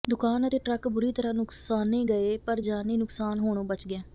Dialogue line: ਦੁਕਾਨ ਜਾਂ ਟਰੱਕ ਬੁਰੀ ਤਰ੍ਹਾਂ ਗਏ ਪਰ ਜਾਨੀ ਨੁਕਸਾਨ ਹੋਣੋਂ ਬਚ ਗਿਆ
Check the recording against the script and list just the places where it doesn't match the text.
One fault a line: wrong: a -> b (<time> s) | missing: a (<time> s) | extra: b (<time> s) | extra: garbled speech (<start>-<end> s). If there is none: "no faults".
wrong: ਜਾਂ -> ਅਤੇ (0.4 s)
extra: ਨੁਕਸਾਨੇ (1.3 s)